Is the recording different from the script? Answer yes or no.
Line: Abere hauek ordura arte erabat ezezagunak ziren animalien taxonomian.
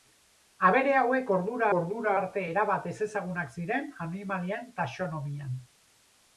yes